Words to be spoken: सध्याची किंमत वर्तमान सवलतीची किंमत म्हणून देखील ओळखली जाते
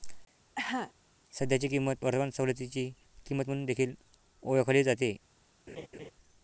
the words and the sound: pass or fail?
fail